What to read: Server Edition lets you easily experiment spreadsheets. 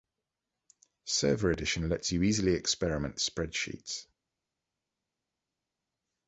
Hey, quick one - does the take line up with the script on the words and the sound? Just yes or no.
yes